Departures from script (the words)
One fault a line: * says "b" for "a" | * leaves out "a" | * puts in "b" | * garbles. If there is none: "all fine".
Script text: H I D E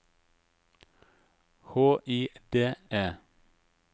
all fine